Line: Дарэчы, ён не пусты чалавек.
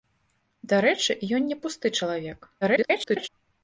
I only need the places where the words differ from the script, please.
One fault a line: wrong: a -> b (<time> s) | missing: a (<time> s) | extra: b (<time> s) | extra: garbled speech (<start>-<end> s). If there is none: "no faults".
extra: garbled speech (2.6-3.3 s)